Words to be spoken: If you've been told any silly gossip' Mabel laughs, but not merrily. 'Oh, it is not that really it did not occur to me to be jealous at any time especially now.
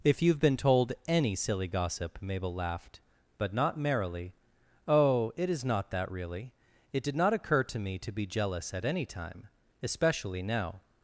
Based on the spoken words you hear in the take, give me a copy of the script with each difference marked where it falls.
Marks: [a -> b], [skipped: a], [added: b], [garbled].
If you've been told any silly gossip' Mabel [laughs, -> laughed] but not merrily. 'Oh, it is not that really it did not occur to me to be jealous at any time especially now.